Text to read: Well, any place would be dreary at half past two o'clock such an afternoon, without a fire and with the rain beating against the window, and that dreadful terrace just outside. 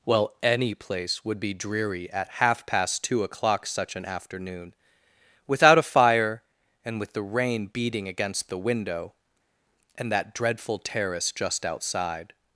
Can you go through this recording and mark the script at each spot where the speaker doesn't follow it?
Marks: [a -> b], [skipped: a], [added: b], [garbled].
Well, any place would be dreary at half past two o'clock such an afternoon, without a fire and with the rain beating against the window, and that dreadful terrace just outside.